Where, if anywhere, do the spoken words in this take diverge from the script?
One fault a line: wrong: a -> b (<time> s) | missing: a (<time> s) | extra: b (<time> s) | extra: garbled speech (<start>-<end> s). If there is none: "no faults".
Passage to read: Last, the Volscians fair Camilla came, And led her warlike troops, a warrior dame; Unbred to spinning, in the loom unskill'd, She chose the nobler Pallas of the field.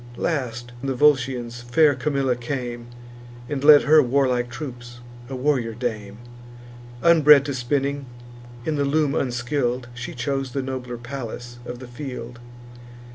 no faults